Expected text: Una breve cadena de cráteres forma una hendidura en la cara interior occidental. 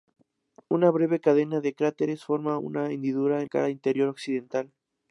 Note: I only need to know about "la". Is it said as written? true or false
false